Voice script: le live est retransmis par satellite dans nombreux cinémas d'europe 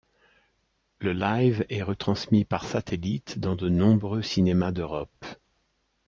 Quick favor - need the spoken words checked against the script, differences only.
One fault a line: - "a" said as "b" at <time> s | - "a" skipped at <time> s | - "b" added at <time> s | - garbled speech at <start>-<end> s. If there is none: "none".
- "de" added at 3.5 s